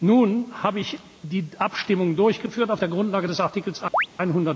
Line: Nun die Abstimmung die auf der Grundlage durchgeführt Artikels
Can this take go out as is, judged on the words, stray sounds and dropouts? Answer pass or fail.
fail